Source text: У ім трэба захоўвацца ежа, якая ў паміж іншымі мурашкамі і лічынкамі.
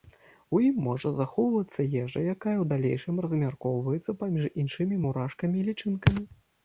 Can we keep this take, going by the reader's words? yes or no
no